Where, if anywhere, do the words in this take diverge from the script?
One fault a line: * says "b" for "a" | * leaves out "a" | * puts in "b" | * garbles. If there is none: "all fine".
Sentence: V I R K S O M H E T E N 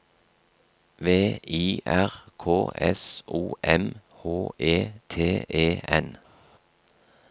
all fine